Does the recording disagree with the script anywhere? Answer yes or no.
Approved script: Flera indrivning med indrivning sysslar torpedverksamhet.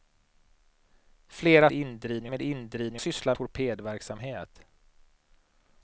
no